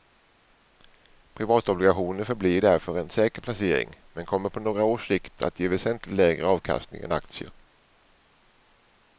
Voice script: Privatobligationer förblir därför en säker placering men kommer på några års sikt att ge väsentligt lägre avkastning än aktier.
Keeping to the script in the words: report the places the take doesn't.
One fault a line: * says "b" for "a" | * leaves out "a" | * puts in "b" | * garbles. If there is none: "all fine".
all fine